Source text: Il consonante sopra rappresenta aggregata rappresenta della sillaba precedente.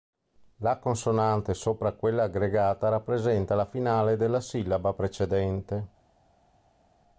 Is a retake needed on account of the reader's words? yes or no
yes